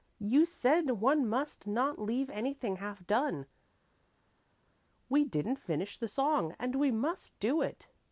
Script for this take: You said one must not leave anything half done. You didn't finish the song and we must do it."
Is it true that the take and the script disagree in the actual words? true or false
true